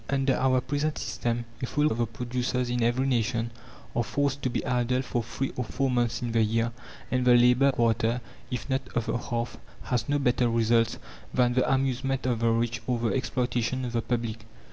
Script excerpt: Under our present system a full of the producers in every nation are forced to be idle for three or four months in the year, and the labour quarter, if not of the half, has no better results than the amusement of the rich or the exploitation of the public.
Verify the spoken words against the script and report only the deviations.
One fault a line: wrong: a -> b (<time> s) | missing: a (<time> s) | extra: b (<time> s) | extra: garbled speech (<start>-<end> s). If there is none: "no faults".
no faults